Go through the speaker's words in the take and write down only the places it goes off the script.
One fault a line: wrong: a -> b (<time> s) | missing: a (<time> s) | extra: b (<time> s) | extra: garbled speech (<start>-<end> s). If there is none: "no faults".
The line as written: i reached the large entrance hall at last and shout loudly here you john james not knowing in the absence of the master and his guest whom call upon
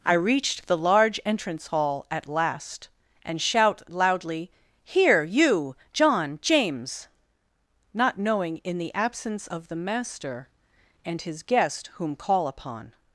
no faults